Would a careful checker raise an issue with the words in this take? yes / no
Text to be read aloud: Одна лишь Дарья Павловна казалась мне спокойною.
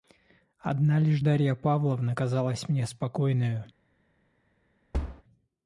no